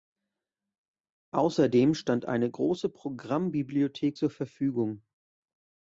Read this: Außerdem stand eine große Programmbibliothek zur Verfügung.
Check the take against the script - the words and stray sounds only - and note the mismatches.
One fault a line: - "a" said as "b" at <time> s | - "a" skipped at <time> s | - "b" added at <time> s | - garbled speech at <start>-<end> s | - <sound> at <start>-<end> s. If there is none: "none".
none